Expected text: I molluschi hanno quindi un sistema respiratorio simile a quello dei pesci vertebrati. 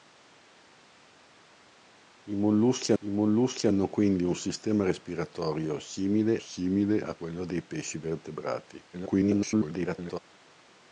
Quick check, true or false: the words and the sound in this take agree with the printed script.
false